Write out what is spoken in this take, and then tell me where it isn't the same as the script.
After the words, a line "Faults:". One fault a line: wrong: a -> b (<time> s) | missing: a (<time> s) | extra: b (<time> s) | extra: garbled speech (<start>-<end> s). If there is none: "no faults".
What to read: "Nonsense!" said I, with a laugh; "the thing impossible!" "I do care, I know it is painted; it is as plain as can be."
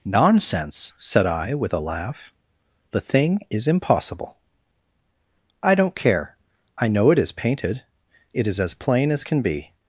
"Nonsense!" said I, with a laugh; "the thing is impossible!" "I don't care, I know it is painted; it is as plain as can be."
Faults:
extra: is (3.5 s)
wrong: do -> don't (5.8 s)